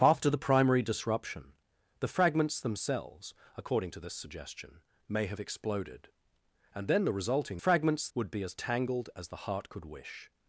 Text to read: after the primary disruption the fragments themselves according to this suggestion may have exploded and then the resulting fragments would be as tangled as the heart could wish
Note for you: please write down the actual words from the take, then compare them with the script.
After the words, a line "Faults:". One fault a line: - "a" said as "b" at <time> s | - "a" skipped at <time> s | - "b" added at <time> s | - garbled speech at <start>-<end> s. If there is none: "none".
after the primary disruption the fragments themselves according to this suggestion may have exploded and then the resulting fragments would be as tangled as the heart could wish
Faults:
none